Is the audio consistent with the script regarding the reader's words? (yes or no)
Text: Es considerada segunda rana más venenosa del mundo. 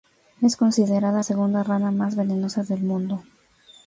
yes